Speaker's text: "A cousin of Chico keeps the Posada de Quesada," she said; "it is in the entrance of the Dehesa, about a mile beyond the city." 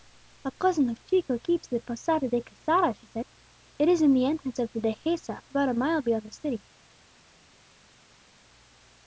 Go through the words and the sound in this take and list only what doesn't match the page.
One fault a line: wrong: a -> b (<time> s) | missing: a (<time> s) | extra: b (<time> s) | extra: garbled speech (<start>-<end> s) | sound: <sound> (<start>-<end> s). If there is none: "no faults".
no faults